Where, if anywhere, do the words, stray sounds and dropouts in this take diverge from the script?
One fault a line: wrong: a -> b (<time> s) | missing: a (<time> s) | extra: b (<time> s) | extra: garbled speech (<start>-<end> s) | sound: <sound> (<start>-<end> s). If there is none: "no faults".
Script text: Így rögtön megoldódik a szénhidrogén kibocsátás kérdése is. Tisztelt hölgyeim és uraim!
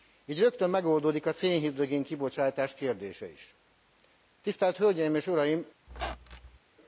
sound: squeak (5.9-6.6 s)